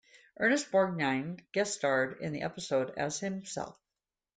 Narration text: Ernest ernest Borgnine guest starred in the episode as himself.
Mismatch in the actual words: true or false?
true